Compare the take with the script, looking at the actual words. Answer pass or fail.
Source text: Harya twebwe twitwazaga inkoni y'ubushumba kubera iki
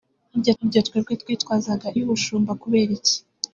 fail